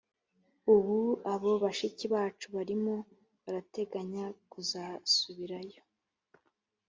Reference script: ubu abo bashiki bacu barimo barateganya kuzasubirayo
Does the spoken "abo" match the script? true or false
true